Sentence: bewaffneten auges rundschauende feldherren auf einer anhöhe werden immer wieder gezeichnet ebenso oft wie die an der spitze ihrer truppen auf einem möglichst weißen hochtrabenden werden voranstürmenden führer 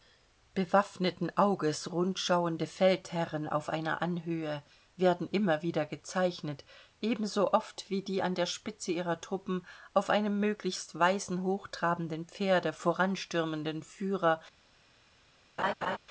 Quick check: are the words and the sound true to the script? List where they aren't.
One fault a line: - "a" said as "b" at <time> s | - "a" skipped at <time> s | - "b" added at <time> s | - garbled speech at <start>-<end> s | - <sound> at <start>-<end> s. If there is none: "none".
- "werden" said as "pferde" at 12.3 s
- laugh at 15.6-16.0 s